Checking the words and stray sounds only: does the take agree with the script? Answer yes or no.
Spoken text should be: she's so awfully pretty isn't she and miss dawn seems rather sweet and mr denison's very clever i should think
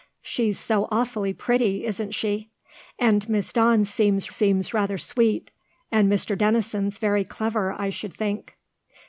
no